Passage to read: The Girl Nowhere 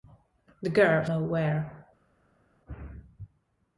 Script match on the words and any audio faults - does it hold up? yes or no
yes